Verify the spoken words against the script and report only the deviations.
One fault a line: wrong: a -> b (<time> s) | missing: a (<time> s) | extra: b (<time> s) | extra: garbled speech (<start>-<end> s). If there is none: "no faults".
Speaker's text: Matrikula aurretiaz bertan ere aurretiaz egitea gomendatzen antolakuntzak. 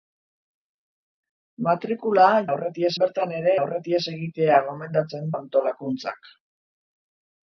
no faults